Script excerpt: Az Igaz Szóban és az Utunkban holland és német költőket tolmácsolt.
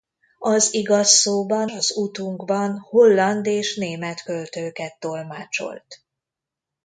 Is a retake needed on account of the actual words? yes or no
yes